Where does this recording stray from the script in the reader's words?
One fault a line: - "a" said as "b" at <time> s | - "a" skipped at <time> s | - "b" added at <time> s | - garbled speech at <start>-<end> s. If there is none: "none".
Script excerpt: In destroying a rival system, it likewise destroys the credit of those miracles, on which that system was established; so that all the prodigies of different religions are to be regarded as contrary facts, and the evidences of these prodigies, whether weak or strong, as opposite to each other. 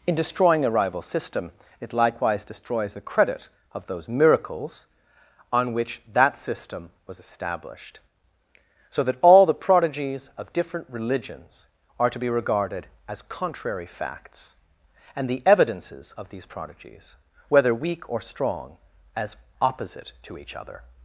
none